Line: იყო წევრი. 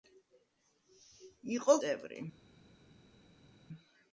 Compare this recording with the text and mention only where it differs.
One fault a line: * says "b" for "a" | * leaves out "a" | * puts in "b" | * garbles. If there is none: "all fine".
all fine